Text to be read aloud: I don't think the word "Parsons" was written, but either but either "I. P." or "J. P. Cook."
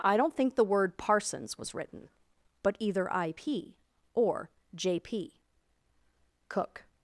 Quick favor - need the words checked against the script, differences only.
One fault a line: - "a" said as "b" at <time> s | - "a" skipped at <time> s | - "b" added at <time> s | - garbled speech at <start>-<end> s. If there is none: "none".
- "but either" skipped at 3.1 s